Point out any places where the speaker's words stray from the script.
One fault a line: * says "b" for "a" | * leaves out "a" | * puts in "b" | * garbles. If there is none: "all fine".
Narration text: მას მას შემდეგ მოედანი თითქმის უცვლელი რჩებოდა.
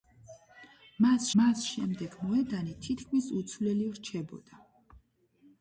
all fine